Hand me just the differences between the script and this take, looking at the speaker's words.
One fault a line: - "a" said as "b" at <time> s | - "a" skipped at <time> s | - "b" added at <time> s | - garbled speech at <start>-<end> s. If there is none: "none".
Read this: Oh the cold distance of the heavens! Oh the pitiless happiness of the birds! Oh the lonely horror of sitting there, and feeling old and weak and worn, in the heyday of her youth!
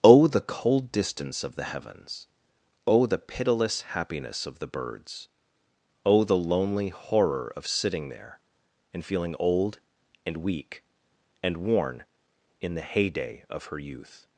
none